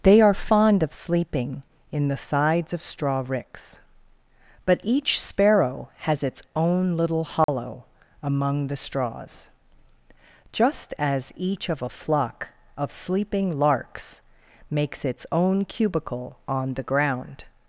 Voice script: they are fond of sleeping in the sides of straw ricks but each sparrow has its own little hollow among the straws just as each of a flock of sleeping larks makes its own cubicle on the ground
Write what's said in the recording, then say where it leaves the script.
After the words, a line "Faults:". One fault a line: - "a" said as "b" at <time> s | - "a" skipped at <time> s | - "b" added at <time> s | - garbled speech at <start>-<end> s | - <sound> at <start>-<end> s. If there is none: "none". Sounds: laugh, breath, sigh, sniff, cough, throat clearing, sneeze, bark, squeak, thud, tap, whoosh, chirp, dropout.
they are fond of sleeping in the sides of straw ricks but each sparrow has its own little hollow among the straws just as each of a flock of sleeping larks makes its own cubicle on the ground
Faults:
- dropout at 7.4-7.5 s